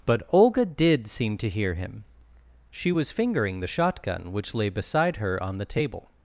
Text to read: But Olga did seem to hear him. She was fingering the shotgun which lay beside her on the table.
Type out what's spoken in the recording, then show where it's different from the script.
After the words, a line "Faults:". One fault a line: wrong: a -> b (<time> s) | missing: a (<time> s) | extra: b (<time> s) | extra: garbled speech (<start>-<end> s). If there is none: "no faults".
But Olga did seem to hear him. She was fingering the shotgun which lay beside her on the table.
Faults:
no faults